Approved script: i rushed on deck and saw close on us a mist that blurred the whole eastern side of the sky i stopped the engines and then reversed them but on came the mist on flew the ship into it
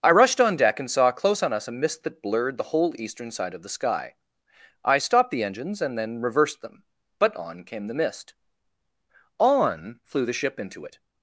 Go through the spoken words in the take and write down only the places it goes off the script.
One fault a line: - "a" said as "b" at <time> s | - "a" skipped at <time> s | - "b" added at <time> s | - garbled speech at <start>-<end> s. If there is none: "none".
none